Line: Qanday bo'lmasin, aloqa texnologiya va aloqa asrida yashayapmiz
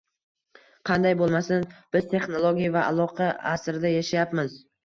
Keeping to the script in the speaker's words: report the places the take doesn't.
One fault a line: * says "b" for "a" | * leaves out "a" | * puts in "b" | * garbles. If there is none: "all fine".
* says "biz" for "aloqa"